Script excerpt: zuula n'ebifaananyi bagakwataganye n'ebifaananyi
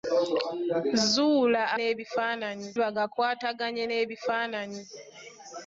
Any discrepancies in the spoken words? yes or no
no